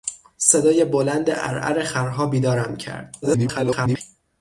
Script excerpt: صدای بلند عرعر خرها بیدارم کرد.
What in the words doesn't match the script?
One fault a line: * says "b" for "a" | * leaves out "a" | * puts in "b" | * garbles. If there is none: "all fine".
* garbles